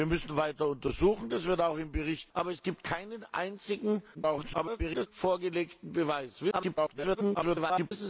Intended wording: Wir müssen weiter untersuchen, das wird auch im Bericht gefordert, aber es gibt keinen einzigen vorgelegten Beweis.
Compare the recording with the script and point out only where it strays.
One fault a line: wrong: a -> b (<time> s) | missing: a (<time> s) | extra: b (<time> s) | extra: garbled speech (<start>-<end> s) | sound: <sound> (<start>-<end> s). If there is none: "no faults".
missing: gefordert (2.3 s)
extra: garbled speech (4.1-5.1 s)
extra: garbled speech (6.5-7.9 s)